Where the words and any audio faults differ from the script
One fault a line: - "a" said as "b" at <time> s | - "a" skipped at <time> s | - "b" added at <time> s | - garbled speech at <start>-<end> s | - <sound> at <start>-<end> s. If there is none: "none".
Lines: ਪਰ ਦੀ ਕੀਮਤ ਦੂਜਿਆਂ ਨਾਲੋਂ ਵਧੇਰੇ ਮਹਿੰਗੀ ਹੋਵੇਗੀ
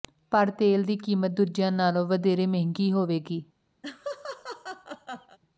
- "ਤੇਲ" added at 0.5 s
- laugh at 3.8-5.4 s